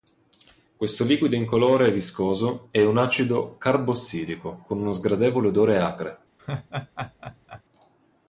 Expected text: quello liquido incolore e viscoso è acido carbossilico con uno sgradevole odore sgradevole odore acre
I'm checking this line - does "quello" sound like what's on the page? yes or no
no